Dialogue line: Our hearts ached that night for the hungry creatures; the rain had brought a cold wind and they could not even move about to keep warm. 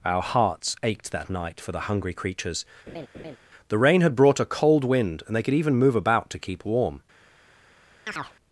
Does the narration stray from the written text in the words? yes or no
yes